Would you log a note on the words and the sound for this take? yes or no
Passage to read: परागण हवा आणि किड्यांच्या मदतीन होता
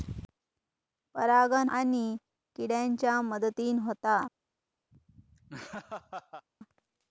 yes